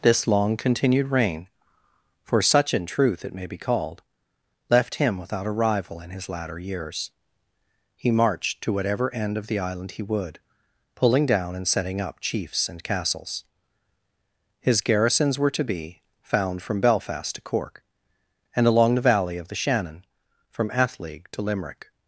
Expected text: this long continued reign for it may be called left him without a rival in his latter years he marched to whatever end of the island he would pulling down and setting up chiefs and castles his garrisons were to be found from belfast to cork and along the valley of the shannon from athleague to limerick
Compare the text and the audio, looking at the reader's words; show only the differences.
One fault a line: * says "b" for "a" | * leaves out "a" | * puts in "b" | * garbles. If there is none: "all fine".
* puts in "such in truth"